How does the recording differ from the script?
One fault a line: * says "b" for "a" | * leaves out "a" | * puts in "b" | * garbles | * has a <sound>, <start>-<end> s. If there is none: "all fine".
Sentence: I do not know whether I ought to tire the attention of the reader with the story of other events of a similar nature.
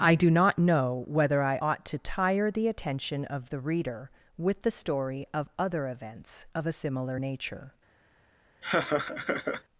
* has a laugh, 8.6-9.6 s